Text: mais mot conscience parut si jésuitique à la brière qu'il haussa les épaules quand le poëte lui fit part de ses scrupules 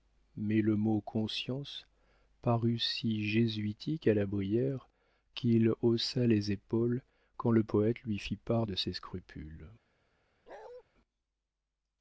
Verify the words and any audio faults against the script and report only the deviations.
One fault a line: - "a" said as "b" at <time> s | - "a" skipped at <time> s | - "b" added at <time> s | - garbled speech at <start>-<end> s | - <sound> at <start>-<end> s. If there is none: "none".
- "le" added at 0.6 s
- bark at 10.5-10.8 s